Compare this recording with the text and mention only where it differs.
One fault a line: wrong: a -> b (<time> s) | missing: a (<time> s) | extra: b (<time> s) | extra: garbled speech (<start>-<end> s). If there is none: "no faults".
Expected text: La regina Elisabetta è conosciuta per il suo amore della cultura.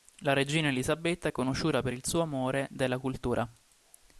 no faults